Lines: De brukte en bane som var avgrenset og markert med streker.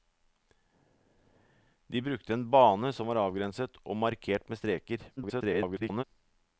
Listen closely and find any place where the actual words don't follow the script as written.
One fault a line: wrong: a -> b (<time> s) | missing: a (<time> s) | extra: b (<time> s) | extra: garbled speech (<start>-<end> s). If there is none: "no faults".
extra: garbled speech (5.2-6.0 s)